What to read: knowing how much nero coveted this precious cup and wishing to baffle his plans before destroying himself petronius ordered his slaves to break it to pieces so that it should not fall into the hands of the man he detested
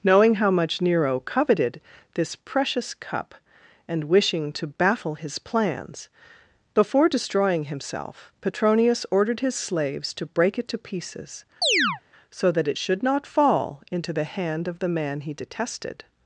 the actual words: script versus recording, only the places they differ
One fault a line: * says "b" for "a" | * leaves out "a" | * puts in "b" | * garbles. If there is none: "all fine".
* says "hand" for "hands"